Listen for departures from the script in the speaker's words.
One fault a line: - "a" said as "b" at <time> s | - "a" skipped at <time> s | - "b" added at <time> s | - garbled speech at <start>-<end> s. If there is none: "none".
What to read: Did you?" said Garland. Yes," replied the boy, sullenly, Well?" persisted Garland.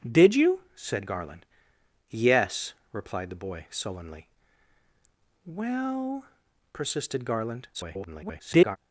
- garbled speech at 7.7-8.8 s